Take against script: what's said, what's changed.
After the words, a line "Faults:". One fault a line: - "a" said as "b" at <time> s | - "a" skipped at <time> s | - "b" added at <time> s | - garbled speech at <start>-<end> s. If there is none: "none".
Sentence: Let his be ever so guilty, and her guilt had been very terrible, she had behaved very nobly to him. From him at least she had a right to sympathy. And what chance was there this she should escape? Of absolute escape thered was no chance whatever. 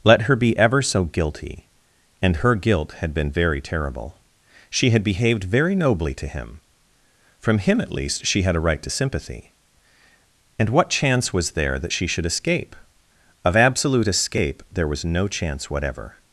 Let her be ever so guilty, and her guilt had been very terrible, she had behaved very nobly to him. From him at least she had a right to sympathy. And what chance was there that she should escape? Of absolute escape there was no chance whatever.
Faults:
- "his" said as "her" at 0.2 s
- "this" said as "that" at 11.8 s
- "thered" said as "there" at 14.7 s